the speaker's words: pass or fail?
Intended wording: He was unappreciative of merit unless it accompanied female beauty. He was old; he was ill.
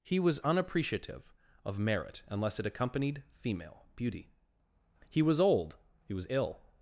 pass